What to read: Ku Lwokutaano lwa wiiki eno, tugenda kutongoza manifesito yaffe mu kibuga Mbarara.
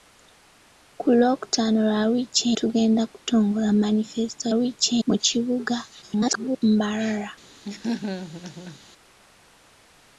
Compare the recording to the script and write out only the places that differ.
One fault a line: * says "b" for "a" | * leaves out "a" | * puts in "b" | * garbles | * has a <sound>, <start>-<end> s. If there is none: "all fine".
* leaves out "eno"
* says "wiiki" for "yaffe"
* garbles
* has a laugh, 7.6-8.8 s